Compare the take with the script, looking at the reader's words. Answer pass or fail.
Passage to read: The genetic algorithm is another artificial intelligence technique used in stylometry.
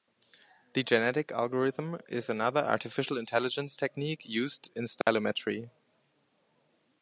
pass